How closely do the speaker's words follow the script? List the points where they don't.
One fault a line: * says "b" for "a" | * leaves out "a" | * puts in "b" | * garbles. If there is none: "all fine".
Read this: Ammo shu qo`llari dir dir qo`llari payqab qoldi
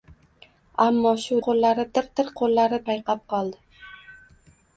all fine